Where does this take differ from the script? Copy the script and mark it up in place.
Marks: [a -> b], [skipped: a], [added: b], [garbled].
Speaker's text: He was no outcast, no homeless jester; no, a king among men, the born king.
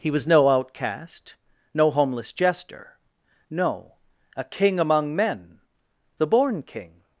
He was no outcast, no homeless jester; no, a king among men, the born king.